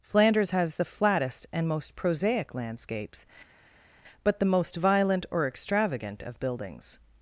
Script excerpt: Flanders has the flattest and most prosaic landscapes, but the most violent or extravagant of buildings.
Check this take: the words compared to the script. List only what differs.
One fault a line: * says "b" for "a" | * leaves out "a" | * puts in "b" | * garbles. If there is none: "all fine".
all fine